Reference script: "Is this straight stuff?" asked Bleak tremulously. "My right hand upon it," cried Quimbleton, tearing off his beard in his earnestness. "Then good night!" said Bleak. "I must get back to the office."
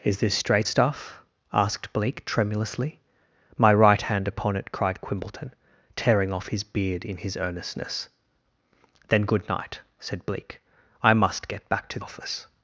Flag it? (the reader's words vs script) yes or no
yes